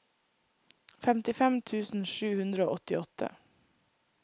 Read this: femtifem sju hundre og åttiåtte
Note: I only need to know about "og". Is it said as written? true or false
true